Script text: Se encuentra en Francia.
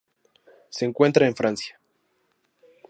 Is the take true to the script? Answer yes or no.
yes